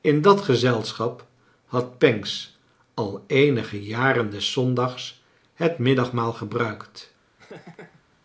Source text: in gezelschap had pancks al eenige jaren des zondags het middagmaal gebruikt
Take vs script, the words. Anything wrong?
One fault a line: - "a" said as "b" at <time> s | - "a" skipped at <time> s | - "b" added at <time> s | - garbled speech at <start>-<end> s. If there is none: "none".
- "dat" added at 0.2 s